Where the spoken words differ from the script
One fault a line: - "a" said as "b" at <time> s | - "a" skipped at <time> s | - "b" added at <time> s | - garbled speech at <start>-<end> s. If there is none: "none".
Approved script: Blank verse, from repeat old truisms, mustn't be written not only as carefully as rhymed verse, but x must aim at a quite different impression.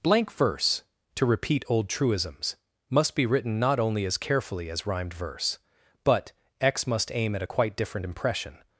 - "from" said as "to" at 1.1 s
- "mustn't" said as "must" at 2.9 s